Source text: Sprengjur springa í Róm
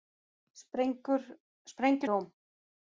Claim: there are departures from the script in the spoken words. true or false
true